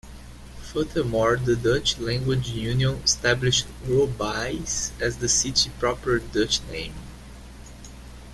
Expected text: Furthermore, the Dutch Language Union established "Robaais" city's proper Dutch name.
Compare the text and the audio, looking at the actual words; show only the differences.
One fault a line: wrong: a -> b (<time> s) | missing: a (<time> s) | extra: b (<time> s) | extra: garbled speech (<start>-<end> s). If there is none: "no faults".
extra: as the (5.0 s)